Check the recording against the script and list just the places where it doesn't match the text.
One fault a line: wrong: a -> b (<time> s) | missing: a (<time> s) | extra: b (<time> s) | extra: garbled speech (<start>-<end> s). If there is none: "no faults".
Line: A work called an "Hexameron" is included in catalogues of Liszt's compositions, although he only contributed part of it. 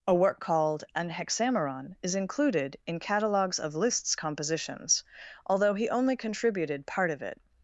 no faults